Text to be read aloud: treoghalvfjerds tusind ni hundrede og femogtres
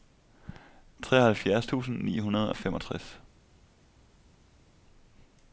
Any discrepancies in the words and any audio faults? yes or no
no